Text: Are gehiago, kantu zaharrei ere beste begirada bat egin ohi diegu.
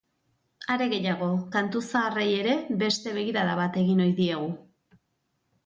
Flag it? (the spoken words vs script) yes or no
no